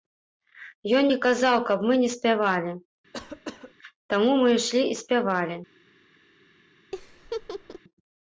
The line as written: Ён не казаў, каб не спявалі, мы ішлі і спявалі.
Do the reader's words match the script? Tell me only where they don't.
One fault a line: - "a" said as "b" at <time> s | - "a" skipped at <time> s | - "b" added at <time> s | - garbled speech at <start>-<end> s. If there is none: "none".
- "мы" added at 1.9 s
- "таму" added at 4.1 s